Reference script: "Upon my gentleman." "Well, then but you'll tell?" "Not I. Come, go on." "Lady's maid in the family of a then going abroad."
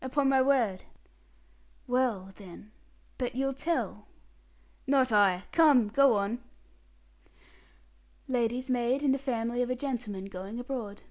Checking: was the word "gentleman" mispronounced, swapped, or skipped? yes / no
yes